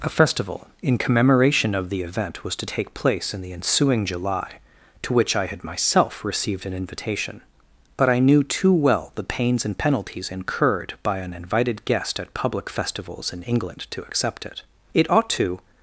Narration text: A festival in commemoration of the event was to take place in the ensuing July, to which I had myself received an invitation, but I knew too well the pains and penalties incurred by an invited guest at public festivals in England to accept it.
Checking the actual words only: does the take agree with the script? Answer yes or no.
no